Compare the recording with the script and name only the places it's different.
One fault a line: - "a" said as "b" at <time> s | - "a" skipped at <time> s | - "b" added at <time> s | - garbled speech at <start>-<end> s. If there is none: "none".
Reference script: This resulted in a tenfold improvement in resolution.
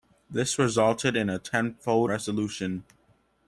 - "improvement in" skipped at 2.1 s